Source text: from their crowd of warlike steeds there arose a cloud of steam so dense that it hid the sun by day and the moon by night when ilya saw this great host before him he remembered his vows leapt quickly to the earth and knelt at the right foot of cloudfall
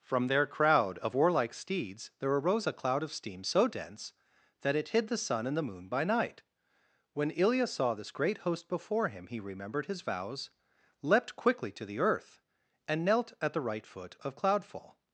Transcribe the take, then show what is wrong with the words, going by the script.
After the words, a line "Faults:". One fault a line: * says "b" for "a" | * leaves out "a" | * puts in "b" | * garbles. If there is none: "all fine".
from their crowd of warlike steeds there arose a cloud of steam so dense that it hid the sun and the moon by night when ilya saw this great host before him he remembered his vows leapt quickly to the earth and knelt at the right foot of cloudfall
Faults:
* leaves out "by day"